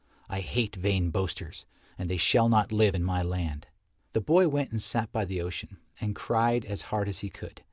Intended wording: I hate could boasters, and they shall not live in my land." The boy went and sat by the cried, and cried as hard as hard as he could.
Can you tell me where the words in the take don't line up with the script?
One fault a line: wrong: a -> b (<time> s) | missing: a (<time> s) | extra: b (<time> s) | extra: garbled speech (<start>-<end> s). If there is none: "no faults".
wrong: could -> vain (0.8 s)
wrong: cried -> ocean (5.4 s)
missing: hard as (7.2 s)